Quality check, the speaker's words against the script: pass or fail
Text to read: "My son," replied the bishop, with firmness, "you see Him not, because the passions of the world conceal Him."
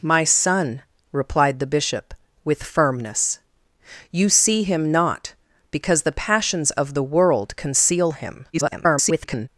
fail